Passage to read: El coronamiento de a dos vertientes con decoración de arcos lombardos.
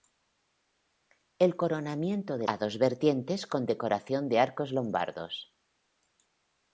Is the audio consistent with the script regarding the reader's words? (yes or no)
yes